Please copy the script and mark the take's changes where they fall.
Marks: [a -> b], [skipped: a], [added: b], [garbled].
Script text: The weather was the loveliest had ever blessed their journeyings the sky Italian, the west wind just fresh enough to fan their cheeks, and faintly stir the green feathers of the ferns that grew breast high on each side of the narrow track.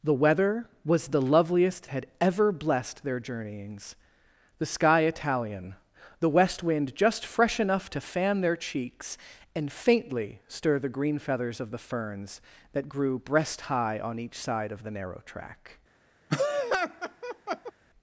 The weather was the loveliest had ever blessed their journeyings the sky Italian, the west wind just fresh enough to fan their cheeks, and faintly stir the green feathers of the ferns that grew breast high on each side of the narrow track.